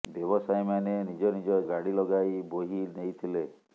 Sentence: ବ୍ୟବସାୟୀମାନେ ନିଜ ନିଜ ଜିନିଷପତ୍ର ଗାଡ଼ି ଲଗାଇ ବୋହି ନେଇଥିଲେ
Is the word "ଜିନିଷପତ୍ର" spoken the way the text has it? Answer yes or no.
no